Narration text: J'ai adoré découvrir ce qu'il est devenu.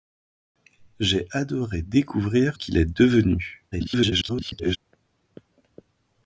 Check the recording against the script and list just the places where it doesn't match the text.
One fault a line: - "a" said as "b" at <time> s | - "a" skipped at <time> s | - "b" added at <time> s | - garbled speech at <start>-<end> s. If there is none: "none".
- "ce" skipped at 2.6 s
- garbled speech at 3.7-4.8 s